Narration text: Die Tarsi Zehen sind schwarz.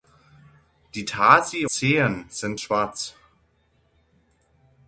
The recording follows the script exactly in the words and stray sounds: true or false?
true